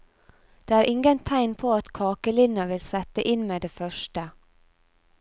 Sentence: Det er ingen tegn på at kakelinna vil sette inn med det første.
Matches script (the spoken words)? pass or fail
pass